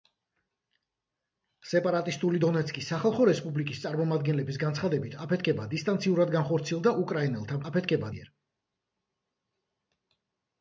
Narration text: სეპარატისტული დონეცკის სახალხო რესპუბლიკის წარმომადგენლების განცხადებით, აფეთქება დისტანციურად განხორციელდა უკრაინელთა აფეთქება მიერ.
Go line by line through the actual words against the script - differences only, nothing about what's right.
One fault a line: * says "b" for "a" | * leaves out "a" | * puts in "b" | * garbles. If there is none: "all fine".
all fine